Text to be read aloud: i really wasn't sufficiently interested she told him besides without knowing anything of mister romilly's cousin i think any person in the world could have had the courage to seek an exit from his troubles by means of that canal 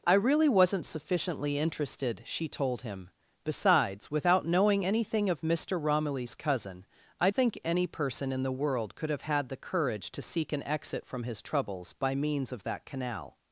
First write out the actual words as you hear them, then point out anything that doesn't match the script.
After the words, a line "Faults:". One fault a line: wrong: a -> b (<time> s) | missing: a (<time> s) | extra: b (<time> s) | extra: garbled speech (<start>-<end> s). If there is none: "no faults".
i really wasn't sufficiently interested she told him besides without knowing anything of mister romilly's cousin i think any person in the world could have had the courage to seek an exit from his troubles by means of that canal
Faults:
no faults